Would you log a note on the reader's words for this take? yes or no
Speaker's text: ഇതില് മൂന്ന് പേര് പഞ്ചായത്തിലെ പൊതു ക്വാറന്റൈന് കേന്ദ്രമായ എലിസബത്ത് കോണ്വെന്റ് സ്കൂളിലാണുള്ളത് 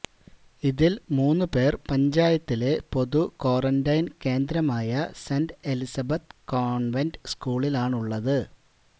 yes